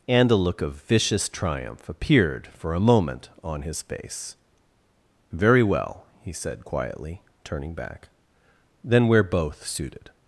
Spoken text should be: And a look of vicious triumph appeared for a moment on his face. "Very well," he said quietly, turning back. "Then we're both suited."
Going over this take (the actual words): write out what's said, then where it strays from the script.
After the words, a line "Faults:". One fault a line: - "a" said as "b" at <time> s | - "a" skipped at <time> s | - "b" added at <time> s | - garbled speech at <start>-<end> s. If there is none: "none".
And a look of vicious triumph appeared for a moment on his face. "Very well," he said quietly, turning back. "Then we're both suited."
Faults:
none